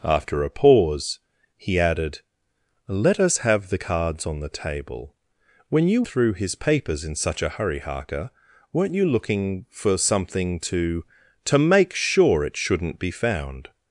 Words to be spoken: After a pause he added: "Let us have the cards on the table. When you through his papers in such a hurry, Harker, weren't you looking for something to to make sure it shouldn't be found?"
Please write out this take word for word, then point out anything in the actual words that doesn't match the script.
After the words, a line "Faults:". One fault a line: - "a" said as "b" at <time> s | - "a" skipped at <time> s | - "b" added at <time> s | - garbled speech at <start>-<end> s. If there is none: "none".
After a pause he added: "Let us have the cards on the table. When you through his papers in such a hurry, Harker, weren't you looking for something to to make sure it shouldn't be found?"
Faults:
none